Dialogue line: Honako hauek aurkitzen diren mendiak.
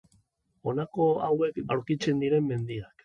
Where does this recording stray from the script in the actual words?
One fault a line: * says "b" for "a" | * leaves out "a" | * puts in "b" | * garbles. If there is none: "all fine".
all fine